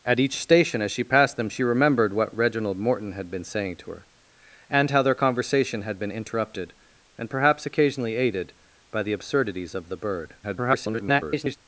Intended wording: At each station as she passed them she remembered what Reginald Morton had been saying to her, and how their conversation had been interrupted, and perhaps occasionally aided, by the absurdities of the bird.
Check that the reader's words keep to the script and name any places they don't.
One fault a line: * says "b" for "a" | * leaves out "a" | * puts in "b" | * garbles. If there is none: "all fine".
* garbles